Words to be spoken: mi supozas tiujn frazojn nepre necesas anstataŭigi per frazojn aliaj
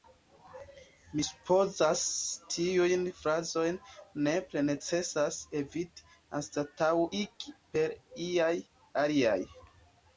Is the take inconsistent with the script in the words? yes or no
yes